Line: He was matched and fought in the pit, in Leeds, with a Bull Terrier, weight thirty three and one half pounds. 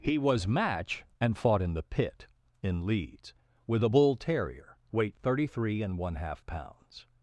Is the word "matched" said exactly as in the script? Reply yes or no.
no